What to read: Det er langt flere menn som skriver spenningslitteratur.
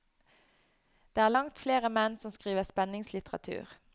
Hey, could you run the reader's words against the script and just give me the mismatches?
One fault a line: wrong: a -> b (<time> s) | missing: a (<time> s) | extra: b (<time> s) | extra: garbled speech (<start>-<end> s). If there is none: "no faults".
no faults